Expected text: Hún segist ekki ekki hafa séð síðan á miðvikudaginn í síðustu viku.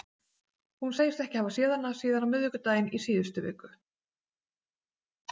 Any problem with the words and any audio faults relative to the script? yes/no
yes